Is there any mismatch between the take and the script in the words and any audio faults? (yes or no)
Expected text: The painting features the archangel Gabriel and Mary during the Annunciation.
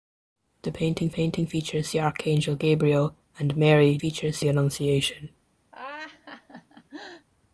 yes